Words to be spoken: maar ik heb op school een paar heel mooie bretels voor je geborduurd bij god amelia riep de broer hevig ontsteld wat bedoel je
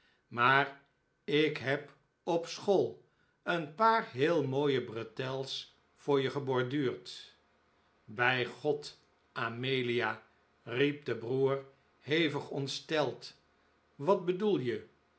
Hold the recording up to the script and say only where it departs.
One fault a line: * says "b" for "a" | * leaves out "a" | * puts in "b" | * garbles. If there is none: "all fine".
all fine